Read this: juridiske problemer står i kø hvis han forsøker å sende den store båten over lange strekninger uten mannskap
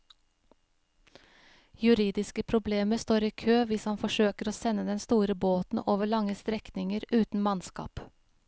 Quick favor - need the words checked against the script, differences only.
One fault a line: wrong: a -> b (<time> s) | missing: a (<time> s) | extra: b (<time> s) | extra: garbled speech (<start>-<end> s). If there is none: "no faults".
no faults